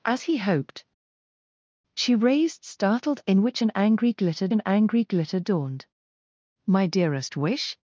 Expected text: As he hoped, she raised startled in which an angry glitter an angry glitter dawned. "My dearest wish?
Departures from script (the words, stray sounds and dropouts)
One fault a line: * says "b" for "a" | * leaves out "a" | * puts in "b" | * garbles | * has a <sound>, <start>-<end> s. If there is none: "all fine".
all fine